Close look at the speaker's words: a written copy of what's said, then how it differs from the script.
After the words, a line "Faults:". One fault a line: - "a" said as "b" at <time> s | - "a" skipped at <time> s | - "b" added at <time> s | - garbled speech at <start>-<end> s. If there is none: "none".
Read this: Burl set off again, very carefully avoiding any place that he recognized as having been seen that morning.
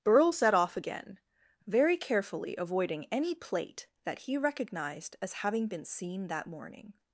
Burl set off again, very carefully avoiding any plate that he recognized as having been seen that morning.
Faults:
- "place" said as "plate" at 3.3 s